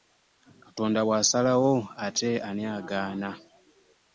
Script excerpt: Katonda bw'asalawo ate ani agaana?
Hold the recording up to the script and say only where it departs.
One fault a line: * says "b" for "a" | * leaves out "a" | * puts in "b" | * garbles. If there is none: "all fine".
all fine